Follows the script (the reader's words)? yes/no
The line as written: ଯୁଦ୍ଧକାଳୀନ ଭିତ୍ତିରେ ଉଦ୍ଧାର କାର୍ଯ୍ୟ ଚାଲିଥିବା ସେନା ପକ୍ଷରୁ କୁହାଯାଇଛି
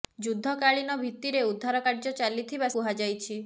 no